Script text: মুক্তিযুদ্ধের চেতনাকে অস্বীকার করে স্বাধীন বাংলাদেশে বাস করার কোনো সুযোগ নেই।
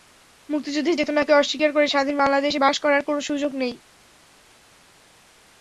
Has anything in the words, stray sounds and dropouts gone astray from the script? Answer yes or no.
no